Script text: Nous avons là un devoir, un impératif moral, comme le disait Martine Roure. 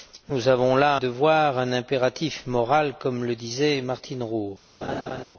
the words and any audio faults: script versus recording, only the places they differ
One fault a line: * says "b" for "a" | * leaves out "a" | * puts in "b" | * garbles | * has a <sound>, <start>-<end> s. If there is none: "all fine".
* leaves out "un"
* has a laugh, 4.8-5.2 s